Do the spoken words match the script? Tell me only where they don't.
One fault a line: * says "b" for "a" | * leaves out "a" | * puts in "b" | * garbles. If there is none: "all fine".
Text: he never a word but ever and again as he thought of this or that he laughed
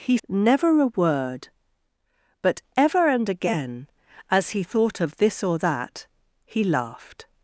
all fine